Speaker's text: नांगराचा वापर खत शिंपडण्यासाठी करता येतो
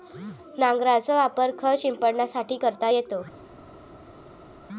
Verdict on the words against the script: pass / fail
pass